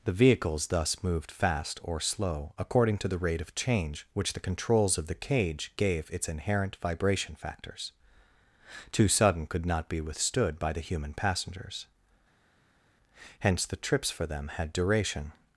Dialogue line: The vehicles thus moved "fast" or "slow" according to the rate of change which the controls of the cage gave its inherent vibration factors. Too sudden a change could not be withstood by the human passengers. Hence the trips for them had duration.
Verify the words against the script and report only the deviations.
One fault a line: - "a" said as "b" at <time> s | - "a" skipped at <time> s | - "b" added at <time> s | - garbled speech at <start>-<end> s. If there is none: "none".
- "a change" skipped at 9.4 s